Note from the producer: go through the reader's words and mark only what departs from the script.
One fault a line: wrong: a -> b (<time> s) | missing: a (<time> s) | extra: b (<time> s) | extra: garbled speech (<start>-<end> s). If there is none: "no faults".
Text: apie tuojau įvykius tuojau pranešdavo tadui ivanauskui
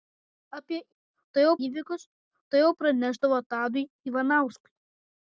no faults